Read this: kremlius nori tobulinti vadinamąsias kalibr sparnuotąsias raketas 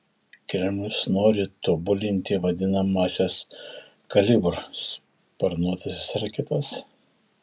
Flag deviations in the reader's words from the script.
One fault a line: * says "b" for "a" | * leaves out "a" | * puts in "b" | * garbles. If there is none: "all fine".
all fine